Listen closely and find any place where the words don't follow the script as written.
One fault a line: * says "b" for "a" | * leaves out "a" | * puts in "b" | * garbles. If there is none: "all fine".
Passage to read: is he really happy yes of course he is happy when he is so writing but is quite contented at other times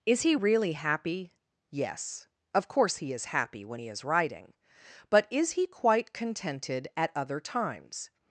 * leaves out "so"
* puts in "he"